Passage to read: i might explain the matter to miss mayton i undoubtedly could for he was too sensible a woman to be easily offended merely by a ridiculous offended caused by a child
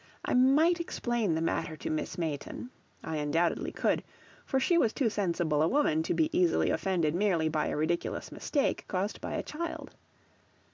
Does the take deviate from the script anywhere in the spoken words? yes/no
yes